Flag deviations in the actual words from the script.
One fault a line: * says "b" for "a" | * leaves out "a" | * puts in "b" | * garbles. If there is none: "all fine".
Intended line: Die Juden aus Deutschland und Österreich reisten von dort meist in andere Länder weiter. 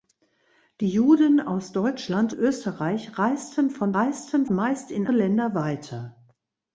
* leaves out "und"
* says "reisten" for "dort"
* leaves out "andere"